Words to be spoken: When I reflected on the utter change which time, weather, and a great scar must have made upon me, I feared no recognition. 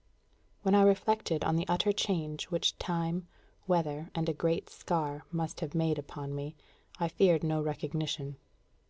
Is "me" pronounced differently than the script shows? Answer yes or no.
no